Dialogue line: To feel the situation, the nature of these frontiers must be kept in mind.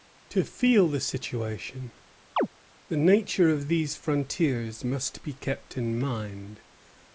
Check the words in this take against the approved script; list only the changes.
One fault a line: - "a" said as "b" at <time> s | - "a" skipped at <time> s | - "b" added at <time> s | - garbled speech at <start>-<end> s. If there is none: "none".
none